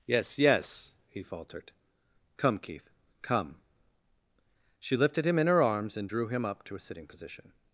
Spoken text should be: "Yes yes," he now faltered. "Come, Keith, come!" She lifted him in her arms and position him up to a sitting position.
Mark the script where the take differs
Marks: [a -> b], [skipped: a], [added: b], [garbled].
"Yes yes," he [skipped: now] faltered. "Come, Keith, come!" She lifted him in her arms and [position -> drew] him up to a sitting position.